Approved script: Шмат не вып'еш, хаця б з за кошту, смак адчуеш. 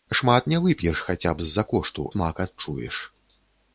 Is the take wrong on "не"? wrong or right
right